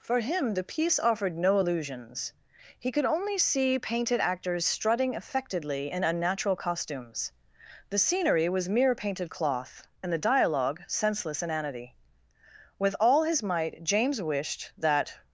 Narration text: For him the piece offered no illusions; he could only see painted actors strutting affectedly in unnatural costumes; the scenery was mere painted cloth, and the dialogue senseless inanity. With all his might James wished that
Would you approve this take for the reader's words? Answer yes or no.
yes